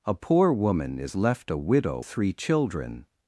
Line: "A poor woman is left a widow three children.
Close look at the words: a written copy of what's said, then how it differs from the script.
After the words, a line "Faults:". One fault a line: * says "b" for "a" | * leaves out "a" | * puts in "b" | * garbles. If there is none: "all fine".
"A poor woman is left a widow three children.
Faults:
all fine